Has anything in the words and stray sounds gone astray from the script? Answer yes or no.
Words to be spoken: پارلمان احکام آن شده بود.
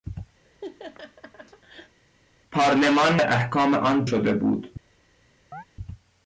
yes